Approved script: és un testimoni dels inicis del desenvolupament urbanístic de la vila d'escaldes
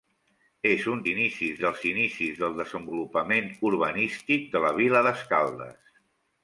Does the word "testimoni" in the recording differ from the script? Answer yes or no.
yes